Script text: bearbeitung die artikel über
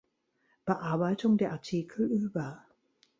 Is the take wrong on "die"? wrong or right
wrong